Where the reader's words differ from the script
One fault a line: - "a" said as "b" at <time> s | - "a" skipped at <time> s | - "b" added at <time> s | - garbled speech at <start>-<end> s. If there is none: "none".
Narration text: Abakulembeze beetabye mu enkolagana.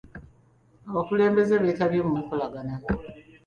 none